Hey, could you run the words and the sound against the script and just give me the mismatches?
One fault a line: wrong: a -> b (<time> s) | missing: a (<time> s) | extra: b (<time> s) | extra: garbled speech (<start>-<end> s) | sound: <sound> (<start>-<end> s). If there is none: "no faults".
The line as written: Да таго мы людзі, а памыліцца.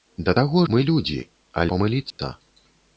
sound: dropout (2.1-2.2 s)